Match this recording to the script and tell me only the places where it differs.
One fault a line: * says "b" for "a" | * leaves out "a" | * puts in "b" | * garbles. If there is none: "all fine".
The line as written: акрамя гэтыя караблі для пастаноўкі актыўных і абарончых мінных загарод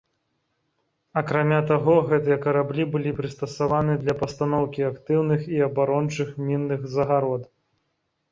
* puts in "таго"
* puts in "былі прыстасаваны"